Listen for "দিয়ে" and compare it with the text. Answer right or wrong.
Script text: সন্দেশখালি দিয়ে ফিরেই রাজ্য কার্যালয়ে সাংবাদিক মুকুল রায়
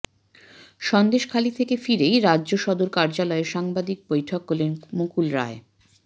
wrong